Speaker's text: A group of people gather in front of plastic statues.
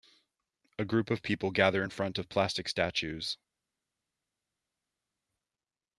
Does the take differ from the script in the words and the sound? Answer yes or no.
no